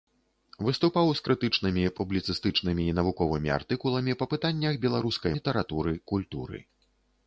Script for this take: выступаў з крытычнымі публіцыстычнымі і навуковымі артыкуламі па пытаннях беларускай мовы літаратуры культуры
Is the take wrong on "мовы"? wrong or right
wrong